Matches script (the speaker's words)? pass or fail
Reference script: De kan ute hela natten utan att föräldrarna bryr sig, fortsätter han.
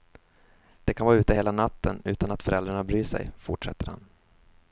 fail